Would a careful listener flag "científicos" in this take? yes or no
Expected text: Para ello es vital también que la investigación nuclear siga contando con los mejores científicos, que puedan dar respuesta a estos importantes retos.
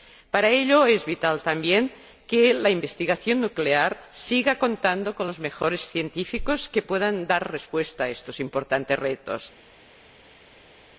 no